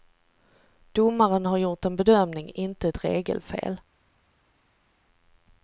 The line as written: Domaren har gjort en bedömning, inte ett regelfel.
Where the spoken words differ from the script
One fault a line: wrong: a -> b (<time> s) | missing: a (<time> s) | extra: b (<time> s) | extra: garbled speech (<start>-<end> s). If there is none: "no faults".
no faults